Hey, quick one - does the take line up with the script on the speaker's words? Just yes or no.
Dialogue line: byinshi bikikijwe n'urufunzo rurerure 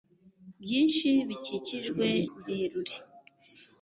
no